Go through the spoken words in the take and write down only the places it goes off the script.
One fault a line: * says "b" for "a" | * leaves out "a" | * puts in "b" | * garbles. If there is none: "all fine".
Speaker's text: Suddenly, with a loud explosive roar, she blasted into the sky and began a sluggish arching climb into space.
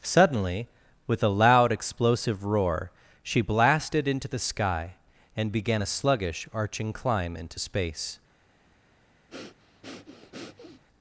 all fine